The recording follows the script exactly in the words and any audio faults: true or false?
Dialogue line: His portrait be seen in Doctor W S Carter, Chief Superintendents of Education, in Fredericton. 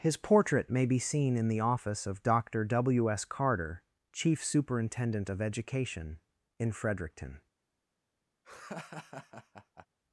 false